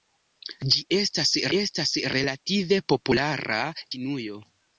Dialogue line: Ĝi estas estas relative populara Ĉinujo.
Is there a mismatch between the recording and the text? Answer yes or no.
no